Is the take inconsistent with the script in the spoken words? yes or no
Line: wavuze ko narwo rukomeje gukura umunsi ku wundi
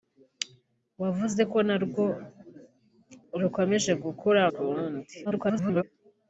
yes